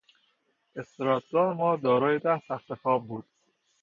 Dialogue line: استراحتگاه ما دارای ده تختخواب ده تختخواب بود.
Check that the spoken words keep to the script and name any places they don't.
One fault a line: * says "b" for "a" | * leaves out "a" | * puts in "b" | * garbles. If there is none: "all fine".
* leaves out "ده تختخواب"